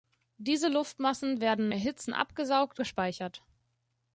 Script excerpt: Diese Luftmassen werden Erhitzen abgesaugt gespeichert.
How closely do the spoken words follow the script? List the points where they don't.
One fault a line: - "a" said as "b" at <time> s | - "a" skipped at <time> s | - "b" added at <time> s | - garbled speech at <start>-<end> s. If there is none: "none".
none